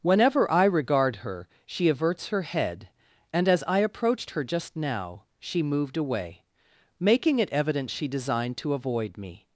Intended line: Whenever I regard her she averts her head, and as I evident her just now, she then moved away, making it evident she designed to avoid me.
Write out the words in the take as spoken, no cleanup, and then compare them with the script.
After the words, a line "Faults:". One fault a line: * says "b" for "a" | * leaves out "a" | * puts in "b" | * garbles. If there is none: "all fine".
Whenever I regard her she averts her head, and as I approached her just now, she moved away, making it evident she designed to avoid me.
Faults:
* says "approached" for "evident"
* leaves out "then"